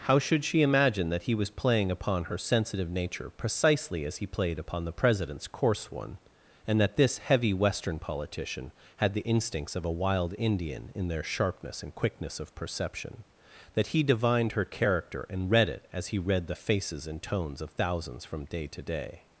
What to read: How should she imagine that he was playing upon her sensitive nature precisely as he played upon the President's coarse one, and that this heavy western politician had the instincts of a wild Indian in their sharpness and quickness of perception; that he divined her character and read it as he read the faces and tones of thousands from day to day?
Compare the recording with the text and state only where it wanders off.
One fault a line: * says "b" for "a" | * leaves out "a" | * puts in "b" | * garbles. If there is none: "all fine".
all fine